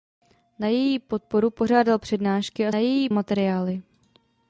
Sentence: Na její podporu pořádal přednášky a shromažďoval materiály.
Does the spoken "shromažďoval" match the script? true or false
false